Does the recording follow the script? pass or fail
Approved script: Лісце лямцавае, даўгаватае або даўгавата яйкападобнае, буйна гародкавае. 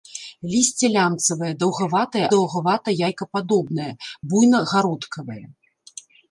fail